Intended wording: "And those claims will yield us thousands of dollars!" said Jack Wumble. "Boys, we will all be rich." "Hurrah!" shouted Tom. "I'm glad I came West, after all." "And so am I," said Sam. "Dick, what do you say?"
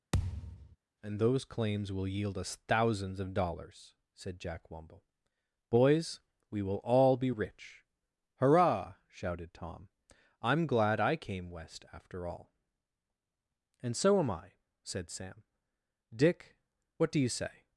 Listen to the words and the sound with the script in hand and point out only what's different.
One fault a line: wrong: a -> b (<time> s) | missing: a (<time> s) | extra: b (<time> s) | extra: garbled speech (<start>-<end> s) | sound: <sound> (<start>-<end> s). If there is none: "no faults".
sound: thud (0.1-0.8 s)